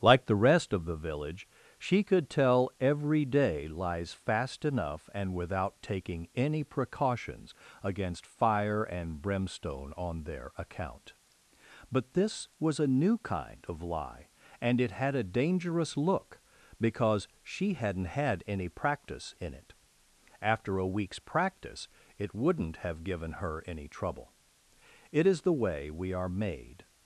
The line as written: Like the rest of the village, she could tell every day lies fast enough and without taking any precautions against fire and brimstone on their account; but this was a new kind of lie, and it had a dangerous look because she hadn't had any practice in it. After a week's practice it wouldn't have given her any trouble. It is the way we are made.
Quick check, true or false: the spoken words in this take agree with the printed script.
true